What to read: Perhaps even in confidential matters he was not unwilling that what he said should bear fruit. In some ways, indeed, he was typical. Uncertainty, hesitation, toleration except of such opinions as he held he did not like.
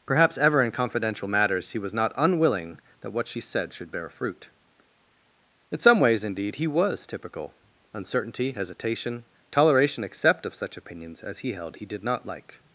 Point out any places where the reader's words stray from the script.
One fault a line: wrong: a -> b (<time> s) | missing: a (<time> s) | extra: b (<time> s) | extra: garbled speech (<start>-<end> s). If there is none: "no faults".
wrong: even -> ever (0.4 s)
wrong: he -> she (3.3 s)